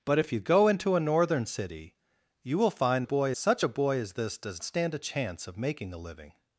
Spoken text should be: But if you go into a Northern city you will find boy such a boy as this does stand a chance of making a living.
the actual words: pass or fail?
pass